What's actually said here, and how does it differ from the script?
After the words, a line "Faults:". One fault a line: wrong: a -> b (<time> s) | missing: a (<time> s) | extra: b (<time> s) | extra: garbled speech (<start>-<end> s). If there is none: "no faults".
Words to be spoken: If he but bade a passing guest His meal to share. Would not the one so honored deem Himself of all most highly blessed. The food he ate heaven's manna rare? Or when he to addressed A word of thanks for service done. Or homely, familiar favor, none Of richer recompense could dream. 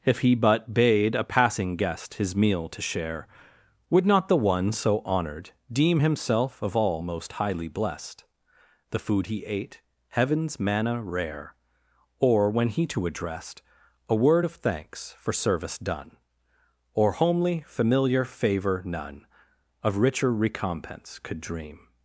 If he but bade a passing guest His meal to share. Would not the one so honored deem Himself of all most highly blessed. The food he ate heaven's manna rare? Or when he to addressed A word of thanks for service done. Or homely, familiar favor, none Of richer recompense could dream.
Faults:
no faults